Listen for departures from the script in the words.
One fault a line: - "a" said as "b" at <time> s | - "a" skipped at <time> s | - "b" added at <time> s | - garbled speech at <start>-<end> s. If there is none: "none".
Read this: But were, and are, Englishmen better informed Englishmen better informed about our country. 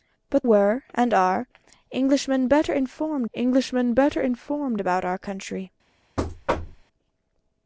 none